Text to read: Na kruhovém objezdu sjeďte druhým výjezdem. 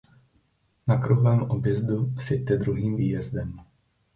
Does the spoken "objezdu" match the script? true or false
true